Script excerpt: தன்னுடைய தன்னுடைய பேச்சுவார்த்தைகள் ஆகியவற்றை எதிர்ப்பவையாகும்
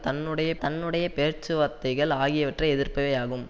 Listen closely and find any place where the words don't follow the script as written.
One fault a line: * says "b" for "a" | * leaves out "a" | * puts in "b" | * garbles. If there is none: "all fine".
all fine